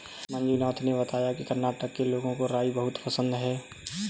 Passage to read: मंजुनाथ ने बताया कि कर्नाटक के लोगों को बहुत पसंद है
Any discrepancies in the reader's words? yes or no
yes